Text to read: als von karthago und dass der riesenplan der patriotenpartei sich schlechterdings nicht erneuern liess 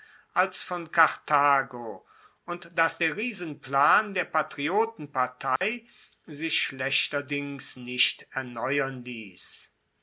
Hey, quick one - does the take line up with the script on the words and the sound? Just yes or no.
no